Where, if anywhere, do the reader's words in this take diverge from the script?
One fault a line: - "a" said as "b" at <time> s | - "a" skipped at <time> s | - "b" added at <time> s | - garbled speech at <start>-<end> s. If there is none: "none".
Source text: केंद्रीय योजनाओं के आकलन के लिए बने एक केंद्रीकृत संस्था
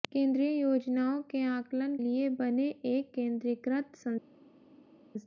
- "के" skipped at 1.9 s